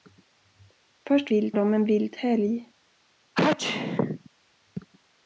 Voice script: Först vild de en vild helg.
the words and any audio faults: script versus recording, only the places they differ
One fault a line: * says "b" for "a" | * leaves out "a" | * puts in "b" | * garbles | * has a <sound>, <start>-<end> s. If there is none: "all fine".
* has a sneeze, 3.3-4.3 s